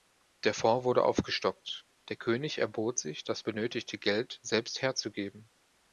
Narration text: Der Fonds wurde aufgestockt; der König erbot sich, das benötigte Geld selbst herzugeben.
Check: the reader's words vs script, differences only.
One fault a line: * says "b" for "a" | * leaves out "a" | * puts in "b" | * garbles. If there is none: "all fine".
all fine